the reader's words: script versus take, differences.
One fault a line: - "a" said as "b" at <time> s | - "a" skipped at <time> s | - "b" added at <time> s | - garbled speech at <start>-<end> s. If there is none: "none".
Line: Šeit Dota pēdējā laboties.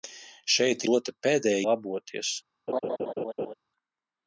none